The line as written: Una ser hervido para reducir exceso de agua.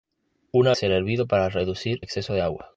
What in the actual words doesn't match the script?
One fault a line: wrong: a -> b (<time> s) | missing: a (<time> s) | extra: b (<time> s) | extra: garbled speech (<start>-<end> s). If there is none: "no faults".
no faults